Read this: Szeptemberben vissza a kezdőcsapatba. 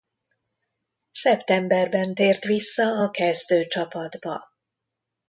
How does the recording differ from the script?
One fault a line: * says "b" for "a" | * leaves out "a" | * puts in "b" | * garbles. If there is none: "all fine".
* puts in "tért"